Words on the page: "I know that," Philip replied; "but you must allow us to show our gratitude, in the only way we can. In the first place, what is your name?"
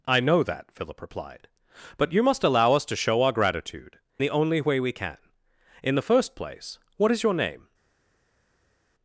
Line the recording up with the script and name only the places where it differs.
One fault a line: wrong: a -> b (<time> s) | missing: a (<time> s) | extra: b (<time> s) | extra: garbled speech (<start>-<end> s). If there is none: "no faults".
missing: in (4.0 s)